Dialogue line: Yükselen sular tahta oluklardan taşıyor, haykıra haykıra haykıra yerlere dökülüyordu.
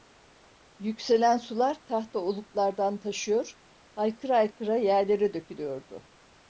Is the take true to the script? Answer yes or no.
no